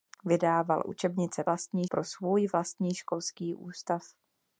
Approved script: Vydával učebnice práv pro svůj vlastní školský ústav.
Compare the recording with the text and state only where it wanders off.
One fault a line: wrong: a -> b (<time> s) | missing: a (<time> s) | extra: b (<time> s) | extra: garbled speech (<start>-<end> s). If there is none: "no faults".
wrong: práv -> vlastní (1.5 s)